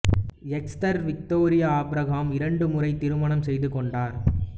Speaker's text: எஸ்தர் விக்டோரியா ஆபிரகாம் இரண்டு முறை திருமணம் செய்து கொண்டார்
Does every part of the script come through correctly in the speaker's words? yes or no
yes